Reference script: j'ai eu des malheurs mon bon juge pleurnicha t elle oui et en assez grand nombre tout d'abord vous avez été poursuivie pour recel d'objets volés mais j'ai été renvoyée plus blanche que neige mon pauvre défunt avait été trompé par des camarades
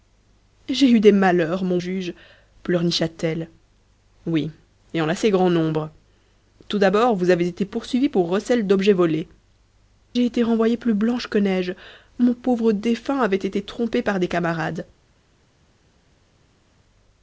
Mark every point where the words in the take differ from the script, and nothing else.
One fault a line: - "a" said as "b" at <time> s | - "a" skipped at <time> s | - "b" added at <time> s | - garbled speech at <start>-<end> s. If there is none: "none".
- "bon" skipped at 1.8 s
- "mais" skipped at 9.3 s